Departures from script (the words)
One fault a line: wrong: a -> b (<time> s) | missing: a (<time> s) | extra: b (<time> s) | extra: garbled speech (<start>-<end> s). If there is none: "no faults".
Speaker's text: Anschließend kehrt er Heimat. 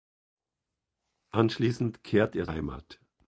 no faults